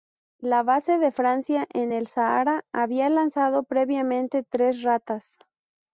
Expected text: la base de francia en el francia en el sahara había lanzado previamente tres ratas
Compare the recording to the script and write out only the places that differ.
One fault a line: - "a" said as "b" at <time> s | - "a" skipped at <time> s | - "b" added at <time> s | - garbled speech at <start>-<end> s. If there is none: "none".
- "francia en el" skipped at 2.1 s